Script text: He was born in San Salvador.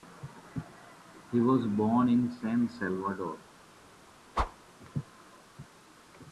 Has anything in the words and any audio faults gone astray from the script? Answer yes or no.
yes